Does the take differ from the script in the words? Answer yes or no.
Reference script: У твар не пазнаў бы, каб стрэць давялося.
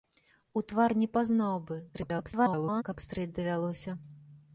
yes